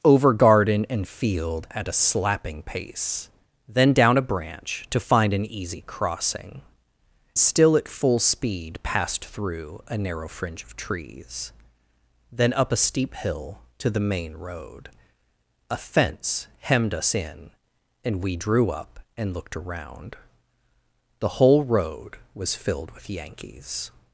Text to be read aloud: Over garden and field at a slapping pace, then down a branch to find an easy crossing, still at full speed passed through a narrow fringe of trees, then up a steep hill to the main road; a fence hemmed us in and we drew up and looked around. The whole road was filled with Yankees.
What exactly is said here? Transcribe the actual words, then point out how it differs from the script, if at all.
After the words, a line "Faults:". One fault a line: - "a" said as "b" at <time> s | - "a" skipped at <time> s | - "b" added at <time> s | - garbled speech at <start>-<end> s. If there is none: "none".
Over garden and field at a slapping pace, then down a branch to find an easy crossing, still at full speed passed through a narrow fringe of trees, then up a steep hill to the main road; a fence hemmed us in and we drew up and looked around. The whole road was filled with Yankees.
Faults:
none